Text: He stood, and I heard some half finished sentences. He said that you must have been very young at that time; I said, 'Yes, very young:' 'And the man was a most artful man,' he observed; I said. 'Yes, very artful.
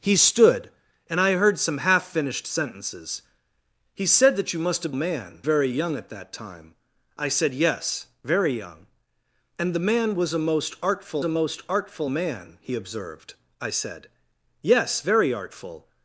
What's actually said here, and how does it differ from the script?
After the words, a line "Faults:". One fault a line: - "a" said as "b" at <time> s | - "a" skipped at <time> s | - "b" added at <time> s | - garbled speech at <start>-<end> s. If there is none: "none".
He stood, and I heard some half finished sentences. He said that you must have man very young at that time; I said, 'Yes, very young:' 'And the man was a most artful a most artful man,' he observed; I said. 'Yes, very artful.
Faults:
- "been" said as "man" at 4.9 s
- "a most artful" added at 11.2 s